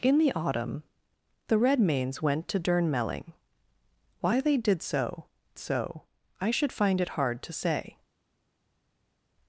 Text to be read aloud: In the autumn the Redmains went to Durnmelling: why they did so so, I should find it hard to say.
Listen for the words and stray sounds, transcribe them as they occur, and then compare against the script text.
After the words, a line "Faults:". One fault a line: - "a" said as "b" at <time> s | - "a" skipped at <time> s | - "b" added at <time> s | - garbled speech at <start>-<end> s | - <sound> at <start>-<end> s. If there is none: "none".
In the autumn the Redmains went to Durnmelling: why they did so so, I should find it hard to say.
Faults:
none